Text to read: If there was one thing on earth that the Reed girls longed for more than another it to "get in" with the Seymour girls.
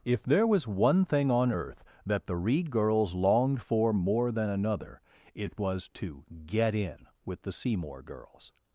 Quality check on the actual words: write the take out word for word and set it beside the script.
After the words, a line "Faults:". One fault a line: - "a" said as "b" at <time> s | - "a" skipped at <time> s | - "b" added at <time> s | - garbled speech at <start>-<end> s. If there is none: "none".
If there was one thing on earth that the Reed girls longed for more than another it was to "get in" with the Seymour girls.
Faults:
- "was" added at 5.6 s